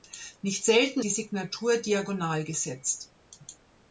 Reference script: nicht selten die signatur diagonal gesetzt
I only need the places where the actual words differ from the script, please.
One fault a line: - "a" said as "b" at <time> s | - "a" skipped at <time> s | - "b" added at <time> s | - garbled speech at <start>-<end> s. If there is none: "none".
none